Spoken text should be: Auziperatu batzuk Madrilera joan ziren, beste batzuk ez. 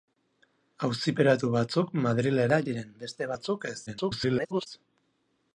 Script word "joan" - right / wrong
wrong